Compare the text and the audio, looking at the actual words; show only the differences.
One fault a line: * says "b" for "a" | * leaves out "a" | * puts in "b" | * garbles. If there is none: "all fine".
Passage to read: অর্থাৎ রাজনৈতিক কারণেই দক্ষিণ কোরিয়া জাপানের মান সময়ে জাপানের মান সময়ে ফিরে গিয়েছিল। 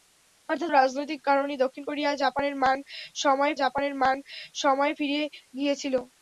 all fine